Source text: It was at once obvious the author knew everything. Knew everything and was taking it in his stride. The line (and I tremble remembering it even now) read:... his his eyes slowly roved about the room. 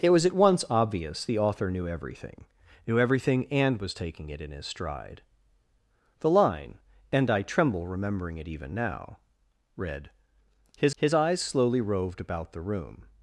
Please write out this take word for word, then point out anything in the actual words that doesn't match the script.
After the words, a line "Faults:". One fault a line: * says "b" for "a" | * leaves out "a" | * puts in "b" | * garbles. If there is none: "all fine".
It was at once obvious the author knew everything. Knew everything and was taking it in his stride. The line (and I tremble remembering it even now) read:... his his eyes slowly roved about the room.
Faults:
all fine